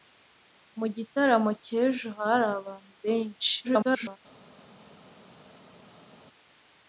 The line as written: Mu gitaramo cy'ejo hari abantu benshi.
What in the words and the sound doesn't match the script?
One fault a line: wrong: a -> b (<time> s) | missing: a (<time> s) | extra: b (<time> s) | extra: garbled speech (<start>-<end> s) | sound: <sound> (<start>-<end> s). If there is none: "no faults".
extra: garbled speech (3.6-4.2 s)